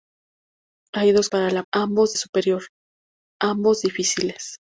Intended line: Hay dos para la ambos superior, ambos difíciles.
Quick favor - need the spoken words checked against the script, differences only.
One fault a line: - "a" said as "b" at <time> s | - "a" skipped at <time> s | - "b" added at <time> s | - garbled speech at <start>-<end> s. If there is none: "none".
none